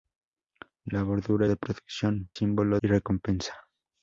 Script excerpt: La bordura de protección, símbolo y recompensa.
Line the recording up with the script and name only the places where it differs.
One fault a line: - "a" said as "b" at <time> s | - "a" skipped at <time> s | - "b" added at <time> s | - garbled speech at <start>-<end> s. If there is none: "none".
none